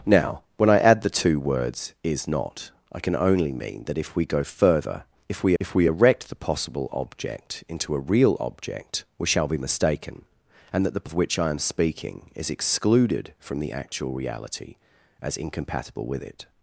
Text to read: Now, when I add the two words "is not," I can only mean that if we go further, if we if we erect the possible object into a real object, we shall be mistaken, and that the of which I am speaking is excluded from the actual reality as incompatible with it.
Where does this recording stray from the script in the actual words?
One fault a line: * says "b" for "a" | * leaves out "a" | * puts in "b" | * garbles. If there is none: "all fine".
all fine